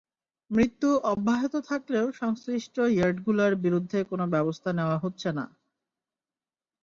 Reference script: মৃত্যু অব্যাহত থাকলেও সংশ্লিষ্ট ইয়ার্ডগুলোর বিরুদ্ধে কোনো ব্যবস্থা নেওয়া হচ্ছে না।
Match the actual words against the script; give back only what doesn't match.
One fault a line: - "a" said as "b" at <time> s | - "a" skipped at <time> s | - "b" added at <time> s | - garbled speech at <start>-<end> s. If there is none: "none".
none